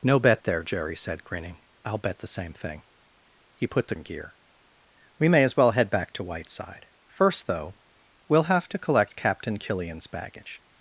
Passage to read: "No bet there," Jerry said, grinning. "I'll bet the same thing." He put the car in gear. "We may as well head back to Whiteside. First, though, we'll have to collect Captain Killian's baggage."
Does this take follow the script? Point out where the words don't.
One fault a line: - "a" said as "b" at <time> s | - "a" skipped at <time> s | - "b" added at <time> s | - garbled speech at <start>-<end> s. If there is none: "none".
- "car" skipped at 4.0 s